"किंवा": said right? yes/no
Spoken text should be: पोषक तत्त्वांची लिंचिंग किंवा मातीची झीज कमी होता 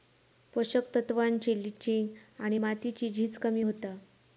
no